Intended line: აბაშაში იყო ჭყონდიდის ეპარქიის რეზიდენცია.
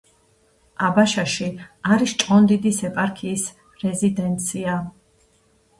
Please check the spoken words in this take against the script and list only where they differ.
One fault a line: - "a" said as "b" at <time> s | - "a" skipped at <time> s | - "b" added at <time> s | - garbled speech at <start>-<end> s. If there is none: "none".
- "იყო" said as "არის" at 2.0 s